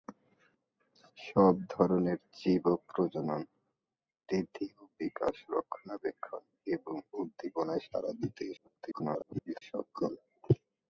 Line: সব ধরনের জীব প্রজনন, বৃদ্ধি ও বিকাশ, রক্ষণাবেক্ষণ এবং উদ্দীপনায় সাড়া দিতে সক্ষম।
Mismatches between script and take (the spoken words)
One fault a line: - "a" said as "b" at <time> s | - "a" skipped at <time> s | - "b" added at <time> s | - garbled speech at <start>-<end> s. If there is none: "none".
- garbled speech at 8.6-9.6 s